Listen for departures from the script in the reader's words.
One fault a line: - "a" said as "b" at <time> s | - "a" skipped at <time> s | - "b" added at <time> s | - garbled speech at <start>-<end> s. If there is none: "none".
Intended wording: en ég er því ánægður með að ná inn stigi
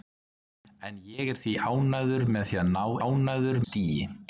- "inn" said as "ánægður" at 3.0 s